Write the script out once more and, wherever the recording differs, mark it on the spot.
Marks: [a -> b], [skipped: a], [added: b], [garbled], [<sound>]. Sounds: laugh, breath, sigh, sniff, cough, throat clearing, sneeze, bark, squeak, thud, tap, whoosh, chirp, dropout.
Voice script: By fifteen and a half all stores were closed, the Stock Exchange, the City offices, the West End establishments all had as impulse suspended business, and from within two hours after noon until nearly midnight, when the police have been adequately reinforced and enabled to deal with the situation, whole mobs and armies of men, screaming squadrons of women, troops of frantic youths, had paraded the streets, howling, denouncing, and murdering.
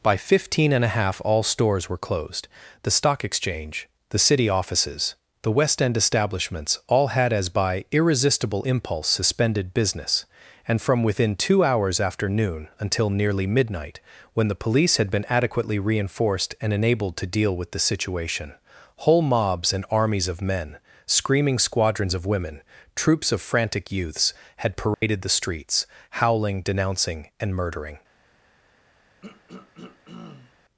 By fifteen and a half all stores were closed, the Stock Exchange, the City offices, the West End establishments all had as [added: by irresistible] impulse suspended business, and from within two hours after noon until nearly midnight, when the police [have -> had] been adequately reinforced and enabled to deal with the situation, whole mobs and armies of men, screaming squadrons of women, troops of frantic youths, had paraded [dropout] the streets, howling, denouncing, and murdering. [throat clearing]